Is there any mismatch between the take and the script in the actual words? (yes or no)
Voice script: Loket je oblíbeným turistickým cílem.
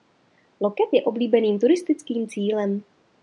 no